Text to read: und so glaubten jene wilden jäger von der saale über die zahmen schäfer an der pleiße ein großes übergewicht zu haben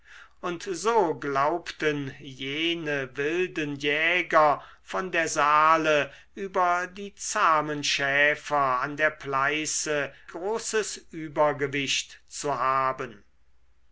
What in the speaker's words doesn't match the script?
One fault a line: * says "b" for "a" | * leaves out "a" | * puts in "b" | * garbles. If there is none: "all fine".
* leaves out "ein"